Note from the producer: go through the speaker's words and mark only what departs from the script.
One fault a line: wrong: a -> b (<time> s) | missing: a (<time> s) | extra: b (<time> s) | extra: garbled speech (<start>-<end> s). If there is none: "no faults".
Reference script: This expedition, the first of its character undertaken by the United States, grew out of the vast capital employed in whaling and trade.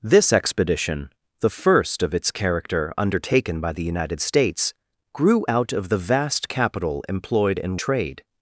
missing: whaling and (7.8 s)